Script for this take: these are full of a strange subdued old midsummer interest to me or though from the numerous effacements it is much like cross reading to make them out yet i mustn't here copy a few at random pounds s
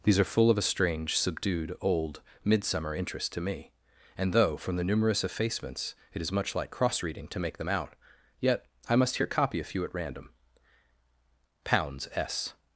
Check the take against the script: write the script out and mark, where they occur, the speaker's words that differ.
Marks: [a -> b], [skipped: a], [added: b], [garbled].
these are full of a strange subdued old midsummer interest to me [or -> and] though from the numerous effacements it is much like cross reading to make them out yet i [mustn't -> must] here copy a few at random pounds s